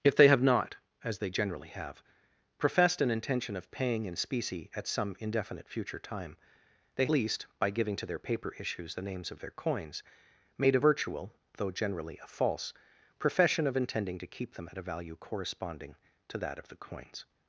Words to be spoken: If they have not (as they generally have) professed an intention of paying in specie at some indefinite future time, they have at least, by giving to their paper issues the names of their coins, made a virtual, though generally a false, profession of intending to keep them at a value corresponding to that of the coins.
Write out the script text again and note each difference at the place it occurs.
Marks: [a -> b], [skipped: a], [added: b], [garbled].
If they have not (as they generally have) professed an intention of paying in specie at some indefinite future time, they [skipped: have at] least, by giving to their paper issues the names of their coins, made a virtual, though generally a false, profession of intending to keep them at a value corresponding to that of the coins.